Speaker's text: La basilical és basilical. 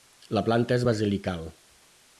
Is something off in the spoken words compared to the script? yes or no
yes